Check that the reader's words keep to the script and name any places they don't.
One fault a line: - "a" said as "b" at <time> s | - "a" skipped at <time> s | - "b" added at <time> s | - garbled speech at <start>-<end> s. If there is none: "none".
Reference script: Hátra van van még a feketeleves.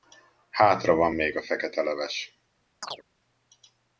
- "van" skipped at 1.1 s